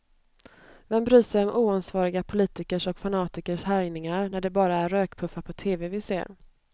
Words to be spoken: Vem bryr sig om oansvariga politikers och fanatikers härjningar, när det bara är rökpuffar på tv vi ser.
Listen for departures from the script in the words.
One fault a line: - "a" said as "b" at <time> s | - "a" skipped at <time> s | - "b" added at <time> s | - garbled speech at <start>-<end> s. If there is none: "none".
none